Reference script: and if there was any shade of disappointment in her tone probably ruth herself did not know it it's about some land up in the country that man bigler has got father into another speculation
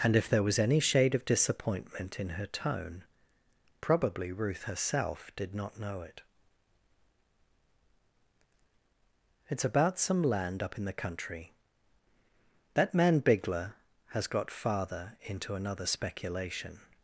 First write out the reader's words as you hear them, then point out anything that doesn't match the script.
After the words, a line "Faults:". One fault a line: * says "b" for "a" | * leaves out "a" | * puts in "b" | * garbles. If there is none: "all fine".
and if there was any shade of disappointment in her tone probably ruth herself did not know it it's about some land up in the country that man bigler has got father into another speculation
Faults:
all fine